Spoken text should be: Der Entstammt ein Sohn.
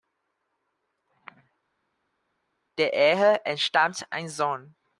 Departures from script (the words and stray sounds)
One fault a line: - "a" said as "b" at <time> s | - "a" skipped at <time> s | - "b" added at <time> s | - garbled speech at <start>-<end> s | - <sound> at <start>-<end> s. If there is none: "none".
- "Ehe" added at 2.9 s